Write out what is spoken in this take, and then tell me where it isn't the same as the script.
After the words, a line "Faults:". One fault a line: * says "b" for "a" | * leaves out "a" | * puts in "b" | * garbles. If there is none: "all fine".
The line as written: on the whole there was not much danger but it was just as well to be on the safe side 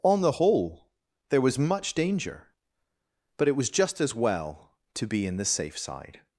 on the whole there was much danger but it was just as well to be in the safe side
Faults:
* leaves out "not"
* says "in" for "on"